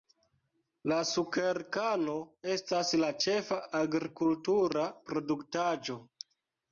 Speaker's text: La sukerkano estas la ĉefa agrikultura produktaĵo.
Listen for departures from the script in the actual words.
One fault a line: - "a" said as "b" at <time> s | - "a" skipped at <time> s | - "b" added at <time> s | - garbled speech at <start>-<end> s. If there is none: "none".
none